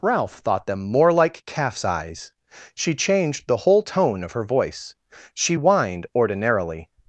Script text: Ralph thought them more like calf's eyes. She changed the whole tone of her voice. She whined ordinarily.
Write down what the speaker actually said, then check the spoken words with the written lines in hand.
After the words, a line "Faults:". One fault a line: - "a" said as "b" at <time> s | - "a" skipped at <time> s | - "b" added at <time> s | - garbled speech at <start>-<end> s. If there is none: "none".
Ralph thought them more like calf's eyes. She changed the whole tone of her voice. She whined ordinarily.
Faults:
none